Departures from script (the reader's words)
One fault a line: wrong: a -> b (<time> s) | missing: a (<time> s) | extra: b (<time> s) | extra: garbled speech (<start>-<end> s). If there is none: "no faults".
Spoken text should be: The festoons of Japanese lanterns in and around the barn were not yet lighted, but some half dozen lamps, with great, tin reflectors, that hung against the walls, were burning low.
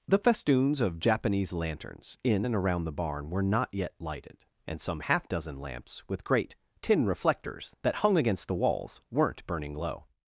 wrong: but -> and (4.7 s)
wrong: were -> weren't (9.1 s)